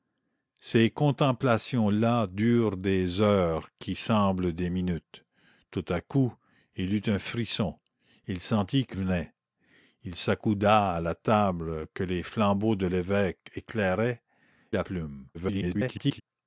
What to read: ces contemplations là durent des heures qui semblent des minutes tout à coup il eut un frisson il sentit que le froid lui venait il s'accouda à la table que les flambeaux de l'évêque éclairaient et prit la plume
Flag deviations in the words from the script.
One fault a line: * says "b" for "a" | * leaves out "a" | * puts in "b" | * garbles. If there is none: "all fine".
* leaves out "le froid lui"
* leaves out "et prit"
* garbles